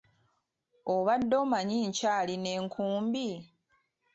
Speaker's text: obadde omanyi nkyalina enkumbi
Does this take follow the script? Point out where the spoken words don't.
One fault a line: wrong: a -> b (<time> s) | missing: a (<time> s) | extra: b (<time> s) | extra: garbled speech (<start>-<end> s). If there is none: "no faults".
no faults